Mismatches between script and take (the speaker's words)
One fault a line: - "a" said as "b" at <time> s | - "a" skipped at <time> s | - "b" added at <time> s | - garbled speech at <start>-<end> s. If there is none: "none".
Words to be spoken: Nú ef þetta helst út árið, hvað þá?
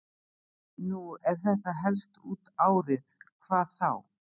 none